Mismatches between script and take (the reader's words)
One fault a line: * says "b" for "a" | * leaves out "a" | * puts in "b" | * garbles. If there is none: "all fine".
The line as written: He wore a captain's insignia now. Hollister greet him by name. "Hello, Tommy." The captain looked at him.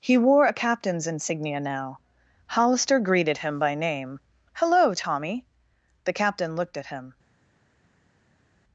* says "greeted" for "greet"